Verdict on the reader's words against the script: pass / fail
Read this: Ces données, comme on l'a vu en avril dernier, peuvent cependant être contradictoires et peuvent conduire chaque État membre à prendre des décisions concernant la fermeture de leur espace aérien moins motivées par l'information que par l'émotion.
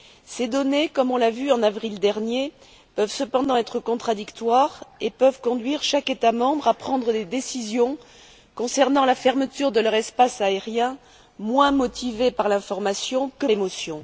fail